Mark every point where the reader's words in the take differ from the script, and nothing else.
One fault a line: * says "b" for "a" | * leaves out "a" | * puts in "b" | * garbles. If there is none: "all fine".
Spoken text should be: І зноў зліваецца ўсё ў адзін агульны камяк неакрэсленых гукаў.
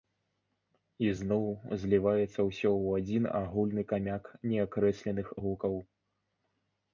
all fine